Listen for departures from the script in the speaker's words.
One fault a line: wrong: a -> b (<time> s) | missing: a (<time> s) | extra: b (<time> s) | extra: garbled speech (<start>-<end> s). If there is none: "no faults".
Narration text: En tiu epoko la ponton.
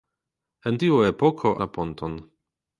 no faults